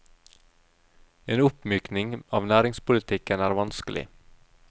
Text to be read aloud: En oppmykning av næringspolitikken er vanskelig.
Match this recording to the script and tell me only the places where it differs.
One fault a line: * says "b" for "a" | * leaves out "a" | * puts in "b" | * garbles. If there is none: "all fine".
all fine